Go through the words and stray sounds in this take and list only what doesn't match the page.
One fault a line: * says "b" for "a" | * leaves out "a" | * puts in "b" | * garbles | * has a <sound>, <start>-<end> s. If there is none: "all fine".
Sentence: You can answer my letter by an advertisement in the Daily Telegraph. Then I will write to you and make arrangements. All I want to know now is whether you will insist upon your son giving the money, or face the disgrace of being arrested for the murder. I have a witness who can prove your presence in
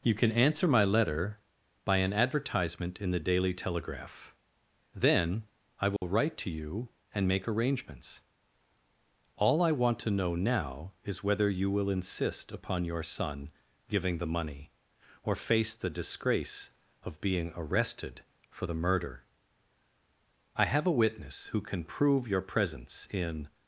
* has a dropout, 6.0-6.0 s